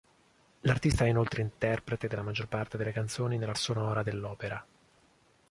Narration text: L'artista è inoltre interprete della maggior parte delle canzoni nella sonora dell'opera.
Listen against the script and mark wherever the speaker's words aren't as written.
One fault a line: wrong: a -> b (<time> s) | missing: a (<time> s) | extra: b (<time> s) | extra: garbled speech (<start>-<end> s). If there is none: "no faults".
no faults